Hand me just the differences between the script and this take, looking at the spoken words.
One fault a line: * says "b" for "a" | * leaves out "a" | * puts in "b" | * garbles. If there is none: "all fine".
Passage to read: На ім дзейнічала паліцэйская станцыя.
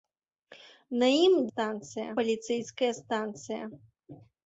* says "станцыя" for "дзейнічала"